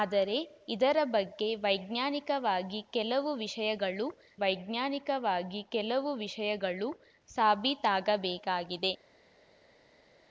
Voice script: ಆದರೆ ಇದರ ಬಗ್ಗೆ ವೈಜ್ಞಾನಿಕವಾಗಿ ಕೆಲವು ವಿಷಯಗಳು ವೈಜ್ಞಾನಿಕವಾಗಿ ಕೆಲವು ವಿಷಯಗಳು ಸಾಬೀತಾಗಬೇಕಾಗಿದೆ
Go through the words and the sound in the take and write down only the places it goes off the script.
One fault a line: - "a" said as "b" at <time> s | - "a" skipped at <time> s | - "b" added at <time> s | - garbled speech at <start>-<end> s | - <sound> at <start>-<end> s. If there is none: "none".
none